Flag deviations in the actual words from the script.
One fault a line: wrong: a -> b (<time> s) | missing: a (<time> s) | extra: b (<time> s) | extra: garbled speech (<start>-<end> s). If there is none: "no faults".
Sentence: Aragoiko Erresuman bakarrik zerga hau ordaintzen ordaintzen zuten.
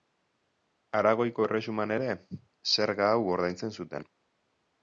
wrong: bakarrik -> ere (2.0 s)
missing: ordaintzen (3.8 s)